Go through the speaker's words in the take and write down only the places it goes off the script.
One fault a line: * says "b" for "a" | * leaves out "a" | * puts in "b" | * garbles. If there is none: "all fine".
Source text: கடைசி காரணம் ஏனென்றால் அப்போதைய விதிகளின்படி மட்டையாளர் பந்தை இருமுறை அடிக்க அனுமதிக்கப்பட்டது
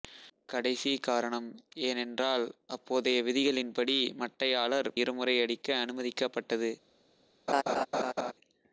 * leaves out "பந்தை"